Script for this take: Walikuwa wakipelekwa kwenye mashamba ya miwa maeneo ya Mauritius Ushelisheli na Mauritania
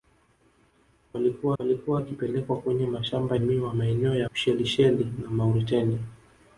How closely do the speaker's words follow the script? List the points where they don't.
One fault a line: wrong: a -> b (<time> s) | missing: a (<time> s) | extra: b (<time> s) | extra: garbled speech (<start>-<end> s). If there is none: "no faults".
extra: walikuwa (1.6 s)
missing: ya (3.4 s)
missing: Mauritius (4.3 s)